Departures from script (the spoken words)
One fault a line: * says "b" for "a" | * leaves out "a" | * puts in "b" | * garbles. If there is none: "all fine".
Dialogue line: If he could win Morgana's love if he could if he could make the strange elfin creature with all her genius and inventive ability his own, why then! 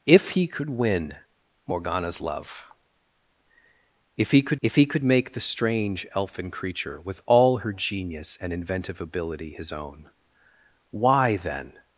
all fine